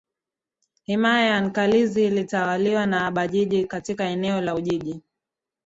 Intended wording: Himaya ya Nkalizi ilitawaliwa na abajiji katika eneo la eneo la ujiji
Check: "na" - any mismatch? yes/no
no